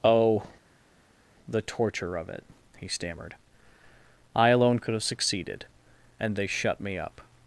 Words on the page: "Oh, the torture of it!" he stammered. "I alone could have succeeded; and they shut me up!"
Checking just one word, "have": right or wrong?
right